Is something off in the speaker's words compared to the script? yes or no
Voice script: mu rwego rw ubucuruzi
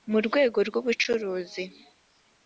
no